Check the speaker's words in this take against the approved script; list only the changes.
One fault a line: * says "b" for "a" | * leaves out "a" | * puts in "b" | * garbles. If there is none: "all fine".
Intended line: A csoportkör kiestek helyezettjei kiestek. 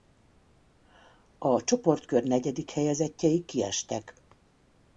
* says "negyedik" for "kiestek"